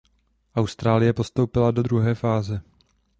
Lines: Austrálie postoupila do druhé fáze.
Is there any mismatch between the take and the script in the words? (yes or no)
no